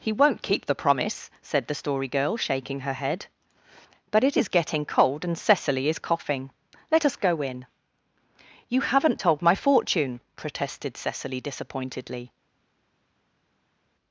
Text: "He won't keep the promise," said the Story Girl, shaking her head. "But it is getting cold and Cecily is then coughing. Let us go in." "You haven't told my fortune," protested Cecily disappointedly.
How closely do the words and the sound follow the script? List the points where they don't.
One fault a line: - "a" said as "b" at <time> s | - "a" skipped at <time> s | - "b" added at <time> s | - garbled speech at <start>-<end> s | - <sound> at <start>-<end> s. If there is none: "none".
- "then" skipped at 6.0 s